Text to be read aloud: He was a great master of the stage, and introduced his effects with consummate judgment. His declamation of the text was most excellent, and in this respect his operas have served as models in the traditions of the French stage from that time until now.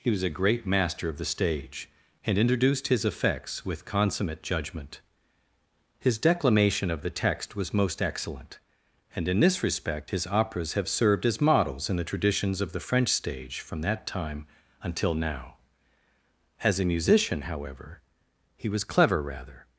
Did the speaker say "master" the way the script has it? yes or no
yes